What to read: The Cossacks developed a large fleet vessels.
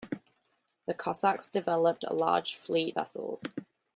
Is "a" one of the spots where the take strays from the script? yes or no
no